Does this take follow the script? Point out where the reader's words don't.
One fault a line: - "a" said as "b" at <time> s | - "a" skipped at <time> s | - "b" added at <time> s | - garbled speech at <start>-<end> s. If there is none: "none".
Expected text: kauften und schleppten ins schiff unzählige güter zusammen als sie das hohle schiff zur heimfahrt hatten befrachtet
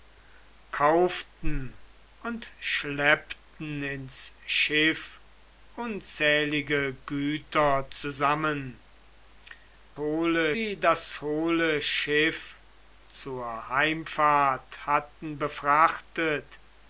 - "als" said as "hohle" at 10.0 s